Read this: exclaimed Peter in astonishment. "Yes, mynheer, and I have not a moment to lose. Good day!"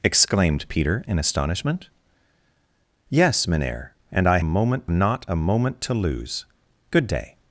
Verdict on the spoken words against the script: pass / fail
fail